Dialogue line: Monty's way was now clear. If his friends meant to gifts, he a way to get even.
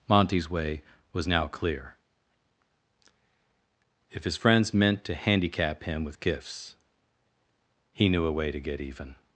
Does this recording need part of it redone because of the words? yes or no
yes